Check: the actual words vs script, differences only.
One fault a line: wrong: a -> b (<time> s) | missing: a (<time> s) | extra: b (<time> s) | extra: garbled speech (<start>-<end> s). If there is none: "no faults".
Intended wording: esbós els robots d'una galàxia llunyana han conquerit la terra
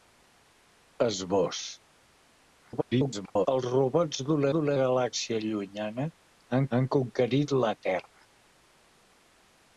extra: garbled speech (2.6-3.5 s)
extra: d'una (4.5 s)
extra: han (6.8 s)